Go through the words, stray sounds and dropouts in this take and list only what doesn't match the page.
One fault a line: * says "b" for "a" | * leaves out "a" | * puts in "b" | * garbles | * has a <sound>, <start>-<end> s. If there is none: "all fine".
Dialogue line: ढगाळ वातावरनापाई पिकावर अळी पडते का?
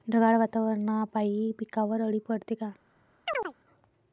* has a chirp, 3.3-3.5 s